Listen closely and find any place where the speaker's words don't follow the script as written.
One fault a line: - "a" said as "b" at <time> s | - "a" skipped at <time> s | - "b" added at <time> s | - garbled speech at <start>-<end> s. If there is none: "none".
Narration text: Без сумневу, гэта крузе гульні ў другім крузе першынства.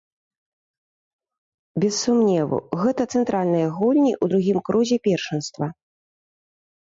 - "крузе" said as "цэнтральныя" at 3.2 s